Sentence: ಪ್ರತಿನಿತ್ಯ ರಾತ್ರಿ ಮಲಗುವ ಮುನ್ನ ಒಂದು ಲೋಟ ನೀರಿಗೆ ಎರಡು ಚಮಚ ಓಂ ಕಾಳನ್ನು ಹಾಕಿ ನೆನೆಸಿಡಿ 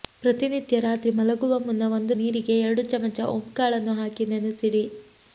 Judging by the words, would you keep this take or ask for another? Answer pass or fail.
fail